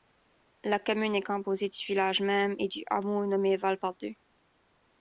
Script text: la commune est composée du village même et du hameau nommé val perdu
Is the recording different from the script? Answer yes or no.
no